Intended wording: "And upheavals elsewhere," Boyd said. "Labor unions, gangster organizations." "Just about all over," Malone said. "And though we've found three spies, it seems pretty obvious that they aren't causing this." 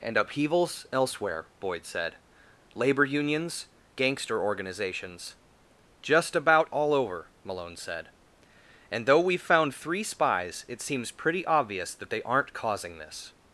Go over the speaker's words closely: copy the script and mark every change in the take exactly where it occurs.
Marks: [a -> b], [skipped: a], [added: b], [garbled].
"And upheavals elsewhere," Boyd said. "Labor unions, gangster organizations." "Just about all over," Malone said. "And though we've found three spies, it seems pretty obvious that they aren't causing this."